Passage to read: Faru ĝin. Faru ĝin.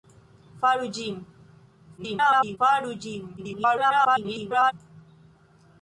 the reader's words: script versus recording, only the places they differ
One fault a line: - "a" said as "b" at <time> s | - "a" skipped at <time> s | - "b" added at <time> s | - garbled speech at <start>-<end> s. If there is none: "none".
- garbled speech at 2.0-2.6 s
- garbled speech at 3.4-4.7 s